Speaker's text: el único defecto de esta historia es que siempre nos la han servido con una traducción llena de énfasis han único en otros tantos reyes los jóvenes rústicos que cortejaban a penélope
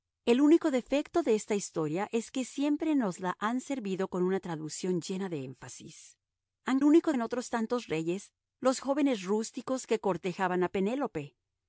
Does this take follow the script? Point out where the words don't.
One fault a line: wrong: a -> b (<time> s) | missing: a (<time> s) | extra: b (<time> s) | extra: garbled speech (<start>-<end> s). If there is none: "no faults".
no faults